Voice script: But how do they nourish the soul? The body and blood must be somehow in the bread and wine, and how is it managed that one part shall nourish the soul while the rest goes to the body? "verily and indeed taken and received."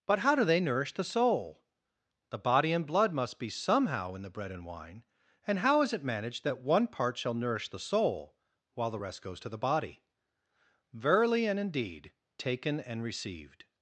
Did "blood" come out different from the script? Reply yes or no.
no